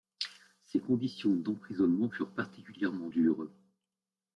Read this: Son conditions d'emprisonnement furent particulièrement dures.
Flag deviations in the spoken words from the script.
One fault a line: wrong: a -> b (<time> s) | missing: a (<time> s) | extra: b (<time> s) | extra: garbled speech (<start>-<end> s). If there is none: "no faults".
wrong: Son -> Ses (0.6 s)